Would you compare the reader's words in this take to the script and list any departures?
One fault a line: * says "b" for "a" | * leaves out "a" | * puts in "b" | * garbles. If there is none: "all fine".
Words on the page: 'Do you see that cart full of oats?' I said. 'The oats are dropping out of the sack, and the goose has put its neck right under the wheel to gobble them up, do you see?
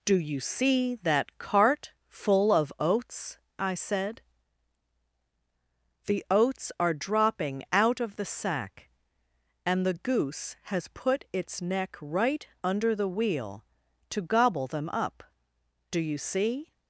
all fine